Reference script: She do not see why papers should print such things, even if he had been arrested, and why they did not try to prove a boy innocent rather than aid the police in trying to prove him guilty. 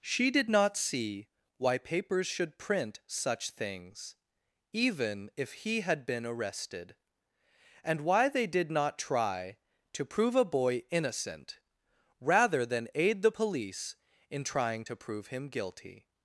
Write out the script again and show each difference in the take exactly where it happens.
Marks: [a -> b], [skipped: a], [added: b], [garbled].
She [do -> did] not see why papers should print such things, even if he had been arrested, and why they did not try to prove a boy innocent rather than aid the police in trying to prove him guilty.